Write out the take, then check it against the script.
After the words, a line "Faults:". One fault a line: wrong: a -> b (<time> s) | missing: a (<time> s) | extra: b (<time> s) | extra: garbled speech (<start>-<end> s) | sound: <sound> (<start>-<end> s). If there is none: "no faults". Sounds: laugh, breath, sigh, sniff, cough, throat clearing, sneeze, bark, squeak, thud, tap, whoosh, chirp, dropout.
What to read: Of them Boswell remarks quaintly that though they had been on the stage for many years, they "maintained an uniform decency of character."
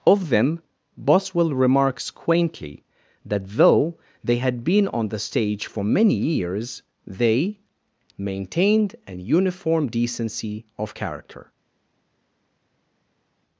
Of them Boswell remarks quaintly that though they had been on the stage for many years, they "maintained an uniform decency of character."
Faults:
no faults